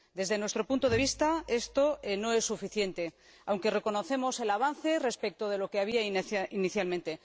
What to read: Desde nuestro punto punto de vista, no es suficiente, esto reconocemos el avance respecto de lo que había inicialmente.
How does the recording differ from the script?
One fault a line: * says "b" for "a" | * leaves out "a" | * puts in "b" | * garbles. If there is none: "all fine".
* leaves out "punto"
* puts in "esto"
* says "aunque" for "esto"